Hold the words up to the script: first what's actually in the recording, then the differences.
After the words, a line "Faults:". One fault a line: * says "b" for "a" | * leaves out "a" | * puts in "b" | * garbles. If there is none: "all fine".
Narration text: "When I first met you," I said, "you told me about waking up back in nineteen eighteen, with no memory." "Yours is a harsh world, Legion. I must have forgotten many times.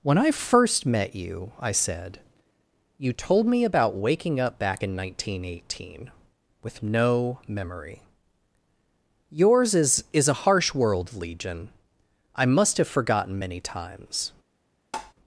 "When I first met you," I said, "you told me about waking up back in nineteen eighteen, with no memory." "Yours is is a harsh world, Legion. I must have forgotten many times.
Faults:
* puts in "is"